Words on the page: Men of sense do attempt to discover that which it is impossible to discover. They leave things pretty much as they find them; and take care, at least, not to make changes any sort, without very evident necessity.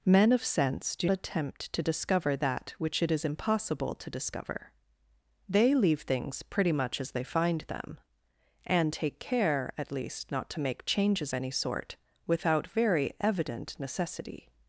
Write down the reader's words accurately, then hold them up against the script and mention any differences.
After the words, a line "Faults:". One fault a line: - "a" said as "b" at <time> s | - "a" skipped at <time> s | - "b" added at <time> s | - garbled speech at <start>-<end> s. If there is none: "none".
Men of sense do attempt to discover that which it is impossible to discover. They leave things pretty much as they find them; and take care, at least, not to make changes any sort, without very evident necessity.
Faults:
none